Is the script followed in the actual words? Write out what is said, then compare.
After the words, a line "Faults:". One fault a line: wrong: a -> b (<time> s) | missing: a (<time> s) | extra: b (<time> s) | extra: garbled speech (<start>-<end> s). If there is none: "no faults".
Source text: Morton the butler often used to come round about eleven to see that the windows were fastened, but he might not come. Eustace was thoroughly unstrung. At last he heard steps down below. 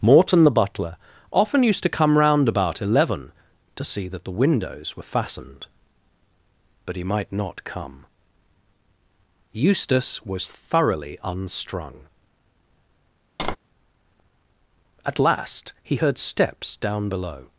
Morton the butler often used to come round about eleven to see that the windows were fastened, but he might not come. Eustace was thoroughly unstrung. At last he heard steps down below.
Faults:
no faults